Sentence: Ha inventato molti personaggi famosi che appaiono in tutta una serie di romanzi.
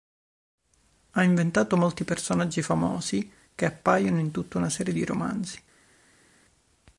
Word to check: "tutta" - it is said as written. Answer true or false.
true